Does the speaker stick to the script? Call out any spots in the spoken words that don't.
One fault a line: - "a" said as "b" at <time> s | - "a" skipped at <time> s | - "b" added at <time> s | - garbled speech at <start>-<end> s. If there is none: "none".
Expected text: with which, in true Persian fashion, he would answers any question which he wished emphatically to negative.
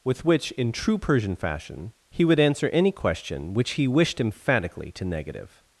- "answers" said as "answer" at 2.4 s